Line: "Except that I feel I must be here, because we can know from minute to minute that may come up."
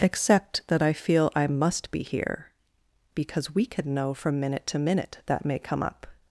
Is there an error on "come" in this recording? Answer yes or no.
no